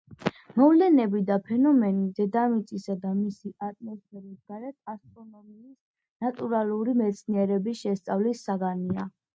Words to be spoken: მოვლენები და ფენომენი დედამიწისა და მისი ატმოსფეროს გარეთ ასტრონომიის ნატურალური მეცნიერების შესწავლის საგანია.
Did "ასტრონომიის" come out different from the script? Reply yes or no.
no